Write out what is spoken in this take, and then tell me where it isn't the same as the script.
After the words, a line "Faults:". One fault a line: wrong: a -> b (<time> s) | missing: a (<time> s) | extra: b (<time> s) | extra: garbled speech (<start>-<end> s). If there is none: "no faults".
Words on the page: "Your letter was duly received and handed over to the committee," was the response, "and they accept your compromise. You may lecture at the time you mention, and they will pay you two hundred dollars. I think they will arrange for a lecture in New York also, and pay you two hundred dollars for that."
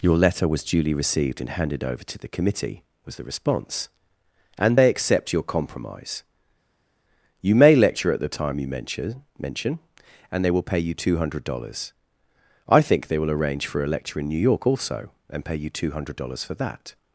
"Your letter was duly received and handed over to the committee," was the response, "and they accept your compromise. You may lecture at the time you mention mention, and they will pay you two hundred dollars. I think they will arrange for a lecture in New York also, and pay you two hundred dollars for that."
Faults:
extra: mention (9.4 s)